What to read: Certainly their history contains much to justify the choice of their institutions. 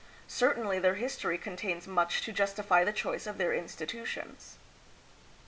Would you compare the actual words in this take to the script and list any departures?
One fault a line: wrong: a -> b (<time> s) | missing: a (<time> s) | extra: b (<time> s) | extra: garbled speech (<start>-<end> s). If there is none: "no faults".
no faults